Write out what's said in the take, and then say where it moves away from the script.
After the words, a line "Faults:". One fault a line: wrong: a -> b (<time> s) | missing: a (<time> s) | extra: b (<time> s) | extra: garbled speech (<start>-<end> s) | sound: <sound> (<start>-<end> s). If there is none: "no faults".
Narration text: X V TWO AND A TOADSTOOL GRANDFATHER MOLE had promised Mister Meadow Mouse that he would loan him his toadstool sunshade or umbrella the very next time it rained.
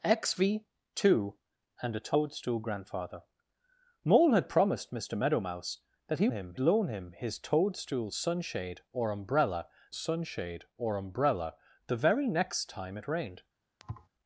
X V TWO AND A TOADSTOOL GRANDFATHER MOLE had promised Mister Meadow Mouse that he him loan him his toadstool sunshade or umbrella sunshade or umbrella the very next time it rained.
Faults:
wrong: would -> him (6.3 s)
extra: sunshade or umbrella (9.9 s)
sound: thud (13.8-14.1 s)